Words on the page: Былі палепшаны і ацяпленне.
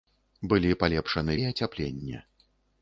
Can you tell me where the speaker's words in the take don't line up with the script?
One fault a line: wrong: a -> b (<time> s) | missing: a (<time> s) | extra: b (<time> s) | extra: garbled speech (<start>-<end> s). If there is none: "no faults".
no faults